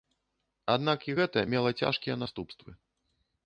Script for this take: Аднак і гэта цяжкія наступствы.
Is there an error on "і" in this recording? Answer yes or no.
no